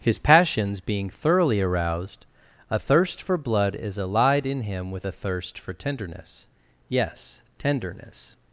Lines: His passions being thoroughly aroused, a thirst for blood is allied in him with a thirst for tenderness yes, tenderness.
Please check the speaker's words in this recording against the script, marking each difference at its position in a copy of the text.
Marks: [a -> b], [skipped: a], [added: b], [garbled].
His passions being thoroughly aroused, a thirst for blood is allied in him with a thirst for tenderness yes, tenderness.